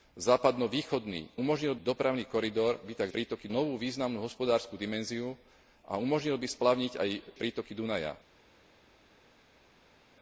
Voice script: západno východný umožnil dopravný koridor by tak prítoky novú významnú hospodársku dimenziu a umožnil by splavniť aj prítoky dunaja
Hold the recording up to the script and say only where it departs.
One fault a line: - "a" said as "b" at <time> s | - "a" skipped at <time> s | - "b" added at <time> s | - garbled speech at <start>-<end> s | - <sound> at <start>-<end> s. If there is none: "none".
none